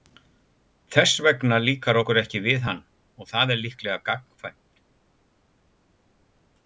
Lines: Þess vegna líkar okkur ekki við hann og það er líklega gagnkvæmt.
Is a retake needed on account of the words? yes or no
no